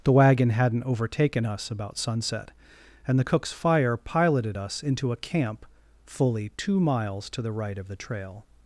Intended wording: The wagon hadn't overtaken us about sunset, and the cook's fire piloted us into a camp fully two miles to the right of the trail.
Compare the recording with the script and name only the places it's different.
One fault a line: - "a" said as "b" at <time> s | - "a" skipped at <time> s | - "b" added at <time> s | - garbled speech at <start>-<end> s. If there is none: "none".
none